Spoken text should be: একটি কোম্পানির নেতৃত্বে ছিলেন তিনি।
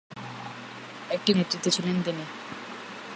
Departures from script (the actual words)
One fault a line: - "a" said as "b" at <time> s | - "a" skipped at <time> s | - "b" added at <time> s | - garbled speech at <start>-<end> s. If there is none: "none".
- "কোম্পানির" skipped at 1.3 s